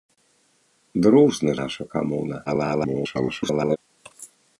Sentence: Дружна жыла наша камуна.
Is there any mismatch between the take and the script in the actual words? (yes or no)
yes